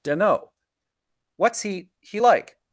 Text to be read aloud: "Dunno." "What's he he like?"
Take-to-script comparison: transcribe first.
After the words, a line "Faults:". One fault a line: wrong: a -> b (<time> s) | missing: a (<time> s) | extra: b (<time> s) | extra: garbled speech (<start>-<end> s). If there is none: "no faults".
"Dunno." "What's he he like?"
Faults:
no faults